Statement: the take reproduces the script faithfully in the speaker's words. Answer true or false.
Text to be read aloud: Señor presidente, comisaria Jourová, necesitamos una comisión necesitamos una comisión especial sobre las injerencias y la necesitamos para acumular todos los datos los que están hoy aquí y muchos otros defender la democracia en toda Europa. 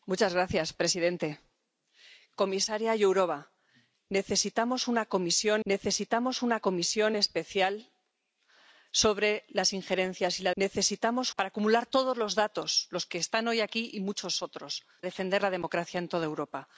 true